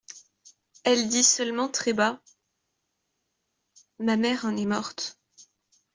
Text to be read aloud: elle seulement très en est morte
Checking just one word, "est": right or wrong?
right